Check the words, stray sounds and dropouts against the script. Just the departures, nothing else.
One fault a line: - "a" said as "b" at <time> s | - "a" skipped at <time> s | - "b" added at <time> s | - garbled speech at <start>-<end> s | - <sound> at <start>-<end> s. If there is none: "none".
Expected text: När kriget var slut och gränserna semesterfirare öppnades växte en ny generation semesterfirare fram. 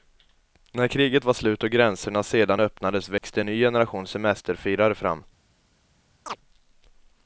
- "semesterfirare" said as "sedan" at 2.2 s
- dropout at 3.2-3.2 s
- chirp at 6.3-6.4 s